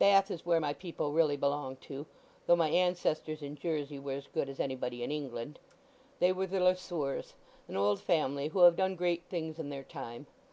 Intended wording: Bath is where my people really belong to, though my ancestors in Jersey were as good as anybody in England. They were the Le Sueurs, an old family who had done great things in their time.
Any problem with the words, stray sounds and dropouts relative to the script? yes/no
yes